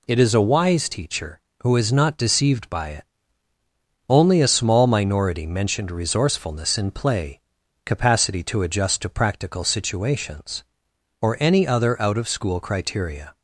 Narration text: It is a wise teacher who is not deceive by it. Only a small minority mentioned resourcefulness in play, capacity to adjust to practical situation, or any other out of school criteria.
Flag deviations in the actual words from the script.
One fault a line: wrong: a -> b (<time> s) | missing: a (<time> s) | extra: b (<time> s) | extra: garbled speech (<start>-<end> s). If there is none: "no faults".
wrong: deceive -> deceived (2.2 s)
wrong: situation -> situations (9.7 s)